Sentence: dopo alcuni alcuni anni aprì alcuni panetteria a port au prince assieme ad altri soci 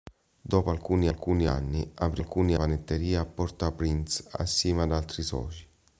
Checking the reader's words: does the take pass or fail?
pass